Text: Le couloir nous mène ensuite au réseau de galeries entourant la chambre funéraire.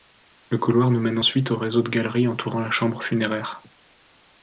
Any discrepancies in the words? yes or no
no